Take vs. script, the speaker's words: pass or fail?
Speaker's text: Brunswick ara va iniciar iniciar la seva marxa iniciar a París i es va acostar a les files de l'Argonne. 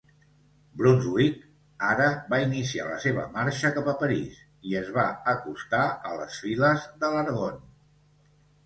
fail